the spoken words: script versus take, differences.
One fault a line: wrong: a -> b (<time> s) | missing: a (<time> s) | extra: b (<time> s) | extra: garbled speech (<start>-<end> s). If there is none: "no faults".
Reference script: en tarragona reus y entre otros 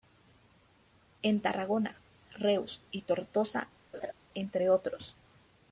extra: tortosa (3.0 s)